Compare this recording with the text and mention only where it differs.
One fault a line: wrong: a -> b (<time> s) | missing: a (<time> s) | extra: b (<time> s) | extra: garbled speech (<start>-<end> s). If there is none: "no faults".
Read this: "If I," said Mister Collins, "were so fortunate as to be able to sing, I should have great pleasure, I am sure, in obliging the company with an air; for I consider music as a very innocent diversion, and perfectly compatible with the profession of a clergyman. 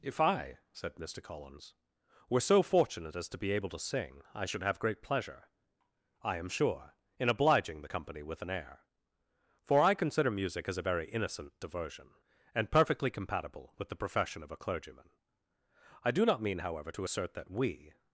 extra: I do not mean however to assert that we (16.0 s)